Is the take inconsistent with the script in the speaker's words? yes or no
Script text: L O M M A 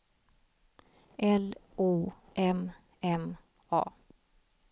no